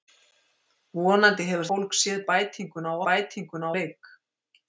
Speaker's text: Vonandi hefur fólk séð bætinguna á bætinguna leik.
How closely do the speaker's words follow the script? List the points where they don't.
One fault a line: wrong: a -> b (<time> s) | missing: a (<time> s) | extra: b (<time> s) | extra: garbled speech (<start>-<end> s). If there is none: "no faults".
no faults